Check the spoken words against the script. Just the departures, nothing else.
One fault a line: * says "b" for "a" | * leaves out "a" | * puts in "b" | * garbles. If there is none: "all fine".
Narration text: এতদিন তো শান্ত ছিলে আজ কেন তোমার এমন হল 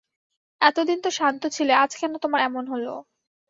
all fine